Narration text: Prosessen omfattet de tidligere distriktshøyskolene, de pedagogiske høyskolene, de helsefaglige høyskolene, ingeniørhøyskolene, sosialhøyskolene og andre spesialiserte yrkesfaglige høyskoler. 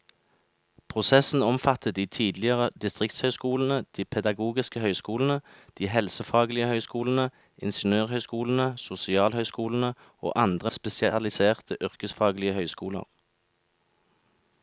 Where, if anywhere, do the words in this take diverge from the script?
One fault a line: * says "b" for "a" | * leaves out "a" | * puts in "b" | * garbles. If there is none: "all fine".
all fine